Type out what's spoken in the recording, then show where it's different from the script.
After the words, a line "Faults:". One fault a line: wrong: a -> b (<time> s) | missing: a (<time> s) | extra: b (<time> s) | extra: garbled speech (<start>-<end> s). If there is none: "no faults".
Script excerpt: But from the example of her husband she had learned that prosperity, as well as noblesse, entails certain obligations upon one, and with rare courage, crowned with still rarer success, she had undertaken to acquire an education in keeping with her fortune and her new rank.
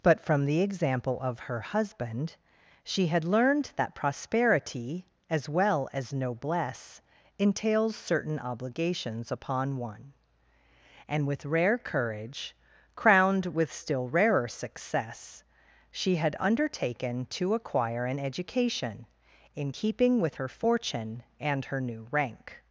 But from the example of her husband she had learned that prosperity, as well as noblesse, entails certain obligations upon one, and with rare courage, crowned with still rarer success, she had undertaken to acquire an education in keeping with her fortune and her new rank.
Faults:
no faults